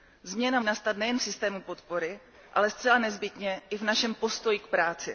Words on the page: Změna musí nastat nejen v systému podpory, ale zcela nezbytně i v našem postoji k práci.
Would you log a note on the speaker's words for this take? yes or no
yes